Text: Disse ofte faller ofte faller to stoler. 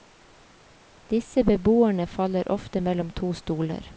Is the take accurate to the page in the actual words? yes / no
no